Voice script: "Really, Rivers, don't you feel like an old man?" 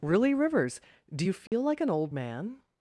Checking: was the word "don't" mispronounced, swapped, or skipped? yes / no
yes